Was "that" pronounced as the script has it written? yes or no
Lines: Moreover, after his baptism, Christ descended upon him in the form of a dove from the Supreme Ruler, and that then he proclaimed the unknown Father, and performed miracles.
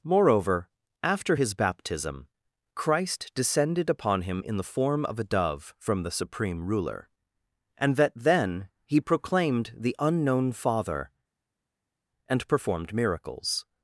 yes